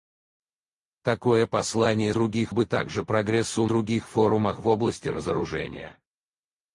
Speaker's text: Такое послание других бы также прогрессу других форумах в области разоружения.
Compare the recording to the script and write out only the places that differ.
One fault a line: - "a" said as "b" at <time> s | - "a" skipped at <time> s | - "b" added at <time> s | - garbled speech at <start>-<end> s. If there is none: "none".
none